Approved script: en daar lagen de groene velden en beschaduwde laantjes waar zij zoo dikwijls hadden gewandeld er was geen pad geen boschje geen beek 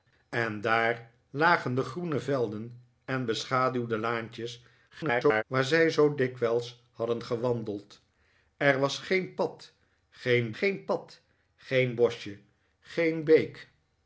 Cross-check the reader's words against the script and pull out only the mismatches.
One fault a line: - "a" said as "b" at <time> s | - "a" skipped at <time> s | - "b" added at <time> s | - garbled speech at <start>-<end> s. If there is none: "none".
- garbled speech at 4.9-5.4 s
- "geen pad geen" added at 10.5 s